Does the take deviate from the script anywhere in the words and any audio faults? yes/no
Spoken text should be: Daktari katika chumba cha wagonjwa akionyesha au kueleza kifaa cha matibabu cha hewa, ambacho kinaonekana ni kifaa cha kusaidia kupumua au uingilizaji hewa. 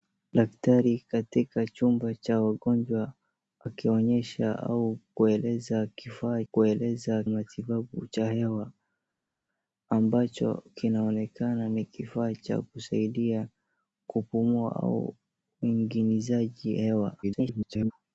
yes